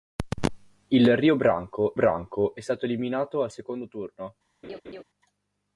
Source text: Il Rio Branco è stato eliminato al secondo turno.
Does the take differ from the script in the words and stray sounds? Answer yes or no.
yes